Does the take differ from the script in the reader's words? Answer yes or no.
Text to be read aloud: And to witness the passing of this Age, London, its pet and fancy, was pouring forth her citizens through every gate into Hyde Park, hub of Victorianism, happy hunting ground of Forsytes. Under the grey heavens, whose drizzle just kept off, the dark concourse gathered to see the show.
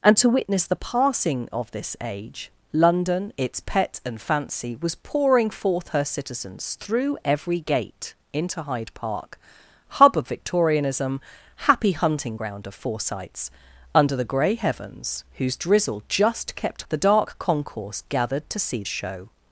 yes